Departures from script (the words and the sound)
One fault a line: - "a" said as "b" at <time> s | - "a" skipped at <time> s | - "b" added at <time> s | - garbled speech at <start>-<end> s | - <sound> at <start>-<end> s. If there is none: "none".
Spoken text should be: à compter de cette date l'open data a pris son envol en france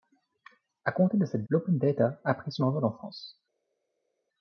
- "date" skipped at 1.4 s